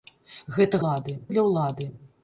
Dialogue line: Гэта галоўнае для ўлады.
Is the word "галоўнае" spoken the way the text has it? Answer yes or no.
no